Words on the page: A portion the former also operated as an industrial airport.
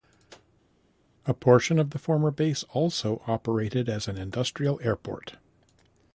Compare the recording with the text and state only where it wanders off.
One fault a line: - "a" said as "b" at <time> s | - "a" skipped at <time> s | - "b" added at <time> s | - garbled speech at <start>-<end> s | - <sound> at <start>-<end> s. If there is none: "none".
- "of" added at 1.8 s
- "base" added at 2.3 s